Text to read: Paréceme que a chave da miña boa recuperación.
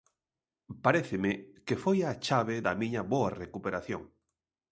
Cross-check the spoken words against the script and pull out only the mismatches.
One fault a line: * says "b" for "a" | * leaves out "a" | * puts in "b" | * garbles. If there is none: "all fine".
* puts in "foi"